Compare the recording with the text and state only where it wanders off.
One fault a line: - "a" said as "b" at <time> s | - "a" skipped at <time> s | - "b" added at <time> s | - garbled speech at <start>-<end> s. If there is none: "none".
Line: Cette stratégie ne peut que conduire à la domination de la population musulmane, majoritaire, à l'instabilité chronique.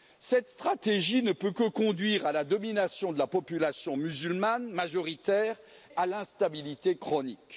none